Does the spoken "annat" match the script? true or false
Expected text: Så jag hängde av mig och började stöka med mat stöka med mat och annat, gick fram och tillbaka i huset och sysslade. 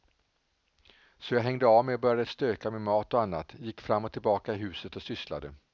true